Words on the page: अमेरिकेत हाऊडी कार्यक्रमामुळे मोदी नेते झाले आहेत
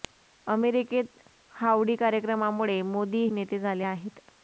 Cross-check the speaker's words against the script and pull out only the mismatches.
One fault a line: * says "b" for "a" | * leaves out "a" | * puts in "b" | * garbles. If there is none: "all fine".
all fine